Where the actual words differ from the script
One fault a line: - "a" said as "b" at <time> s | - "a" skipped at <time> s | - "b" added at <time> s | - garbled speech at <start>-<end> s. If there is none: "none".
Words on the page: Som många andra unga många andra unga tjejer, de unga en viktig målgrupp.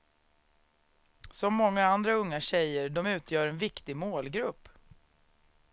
- "många andra unga" skipped at 2.4 s
- "unga" said as "utgör" at 3.0 s